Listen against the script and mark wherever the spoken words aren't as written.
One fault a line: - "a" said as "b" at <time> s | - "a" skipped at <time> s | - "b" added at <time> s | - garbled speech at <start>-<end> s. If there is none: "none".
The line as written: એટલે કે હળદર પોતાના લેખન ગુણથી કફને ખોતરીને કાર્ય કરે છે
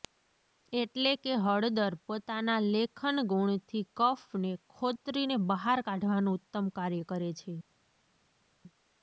- "બહાર કાઢવાનું ઉત્તમ" added at 5.5 s